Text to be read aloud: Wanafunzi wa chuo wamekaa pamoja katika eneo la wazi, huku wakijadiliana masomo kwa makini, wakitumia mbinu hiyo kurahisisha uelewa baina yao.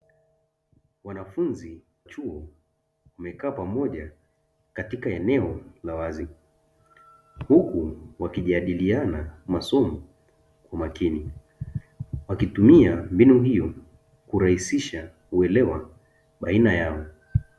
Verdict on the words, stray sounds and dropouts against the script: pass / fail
fail